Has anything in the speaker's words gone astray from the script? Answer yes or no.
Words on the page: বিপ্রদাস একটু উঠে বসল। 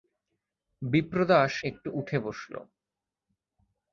no